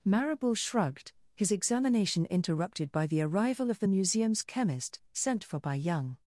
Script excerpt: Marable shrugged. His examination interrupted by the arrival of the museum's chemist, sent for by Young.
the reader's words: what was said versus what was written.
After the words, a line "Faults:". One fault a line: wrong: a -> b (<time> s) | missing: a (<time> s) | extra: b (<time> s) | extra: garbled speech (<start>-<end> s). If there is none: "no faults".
Marable shrugged. His examination interrupted by the arrival of the museum's chemist, sent for by Young.
Faults:
no faults